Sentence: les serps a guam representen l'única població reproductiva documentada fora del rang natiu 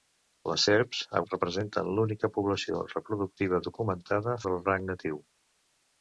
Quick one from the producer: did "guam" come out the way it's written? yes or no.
no